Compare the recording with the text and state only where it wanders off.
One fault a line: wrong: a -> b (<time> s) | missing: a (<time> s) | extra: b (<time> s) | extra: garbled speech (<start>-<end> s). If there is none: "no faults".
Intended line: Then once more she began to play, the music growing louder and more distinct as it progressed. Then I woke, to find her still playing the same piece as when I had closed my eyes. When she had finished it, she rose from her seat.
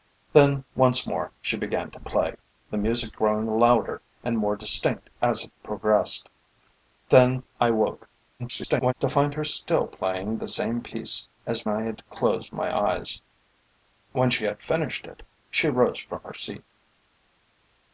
extra: garbled speech (8.4-8.9 s)
missing: when (11.7 s)